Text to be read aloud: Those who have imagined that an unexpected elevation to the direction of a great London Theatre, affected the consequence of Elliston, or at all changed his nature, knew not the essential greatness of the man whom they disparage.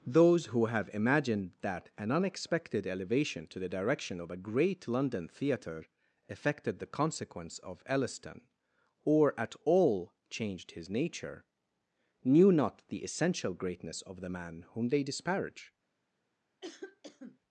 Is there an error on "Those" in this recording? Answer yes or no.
no